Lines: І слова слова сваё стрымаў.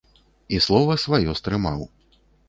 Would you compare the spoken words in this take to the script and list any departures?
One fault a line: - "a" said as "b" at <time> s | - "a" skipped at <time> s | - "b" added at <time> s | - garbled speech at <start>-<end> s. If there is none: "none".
- "слова" skipped at 0.9 s